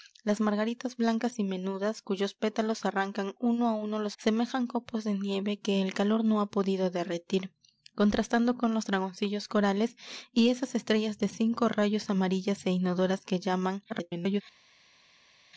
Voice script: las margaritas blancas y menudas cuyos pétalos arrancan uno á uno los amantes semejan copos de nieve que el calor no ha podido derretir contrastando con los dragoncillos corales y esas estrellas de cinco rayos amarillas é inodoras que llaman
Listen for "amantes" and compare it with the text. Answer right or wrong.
wrong